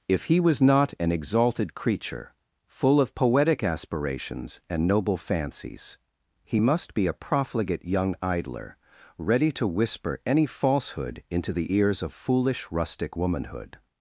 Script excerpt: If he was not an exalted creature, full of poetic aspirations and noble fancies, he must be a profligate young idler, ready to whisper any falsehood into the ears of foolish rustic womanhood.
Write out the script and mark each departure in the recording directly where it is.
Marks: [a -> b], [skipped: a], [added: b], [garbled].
If he was not an exalted creature, full of poetic aspirations and noble fancies, he must be a profligate young idler, ready to whisper any falsehood into the ears of foolish rustic womanhood.